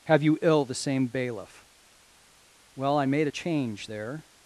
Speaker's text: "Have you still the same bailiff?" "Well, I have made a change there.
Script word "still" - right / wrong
wrong